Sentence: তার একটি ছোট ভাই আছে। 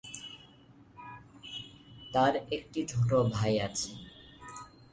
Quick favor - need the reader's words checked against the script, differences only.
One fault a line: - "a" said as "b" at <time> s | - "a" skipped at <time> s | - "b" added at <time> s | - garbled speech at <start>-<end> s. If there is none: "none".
none